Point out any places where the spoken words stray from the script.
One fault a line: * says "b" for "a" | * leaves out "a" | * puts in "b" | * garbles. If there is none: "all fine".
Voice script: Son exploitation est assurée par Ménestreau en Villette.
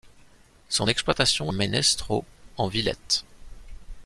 * leaves out "est assurée par"